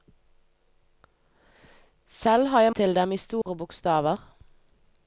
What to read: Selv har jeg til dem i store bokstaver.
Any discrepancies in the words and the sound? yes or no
yes